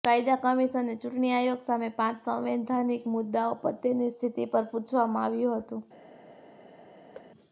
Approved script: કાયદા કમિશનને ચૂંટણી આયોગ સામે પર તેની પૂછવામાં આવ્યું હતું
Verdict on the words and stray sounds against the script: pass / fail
fail